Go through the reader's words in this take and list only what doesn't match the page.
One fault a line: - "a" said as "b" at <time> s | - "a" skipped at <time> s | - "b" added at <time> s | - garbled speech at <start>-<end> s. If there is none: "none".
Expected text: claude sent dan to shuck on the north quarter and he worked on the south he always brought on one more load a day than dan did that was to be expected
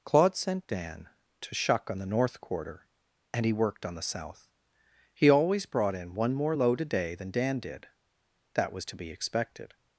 - "on" said as "in" at 6.0 s